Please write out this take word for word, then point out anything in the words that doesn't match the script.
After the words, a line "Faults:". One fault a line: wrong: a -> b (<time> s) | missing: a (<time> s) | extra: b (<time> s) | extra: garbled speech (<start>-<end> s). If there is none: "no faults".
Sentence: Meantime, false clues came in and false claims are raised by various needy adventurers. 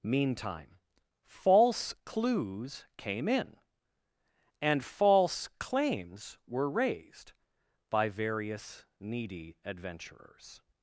Meantime, false clues came in and false claims were raised by various needy adventurers.
Faults:
wrong: are -> were (6.5 s)